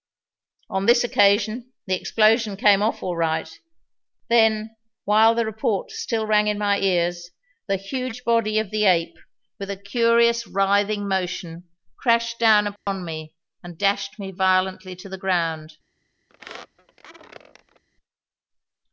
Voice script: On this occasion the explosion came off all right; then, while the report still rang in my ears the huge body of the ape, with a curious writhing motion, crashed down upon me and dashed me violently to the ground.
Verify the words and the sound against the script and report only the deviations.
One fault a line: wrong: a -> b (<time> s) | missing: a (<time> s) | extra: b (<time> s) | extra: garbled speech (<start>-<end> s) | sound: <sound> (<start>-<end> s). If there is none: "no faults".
sound: dropout (12.8-12.9 s)
sound: squeak (16.3-17.8 s)